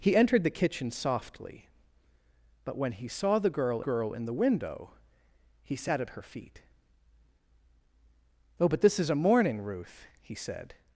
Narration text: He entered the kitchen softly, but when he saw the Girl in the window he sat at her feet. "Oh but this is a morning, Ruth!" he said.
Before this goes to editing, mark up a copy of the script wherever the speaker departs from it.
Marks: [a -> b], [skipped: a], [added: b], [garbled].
He entered the kitchen softly, but when he saw the Girl [added: Girl] in the window he sat at her feet. "Oh but this is a morning, Ruth!" he said.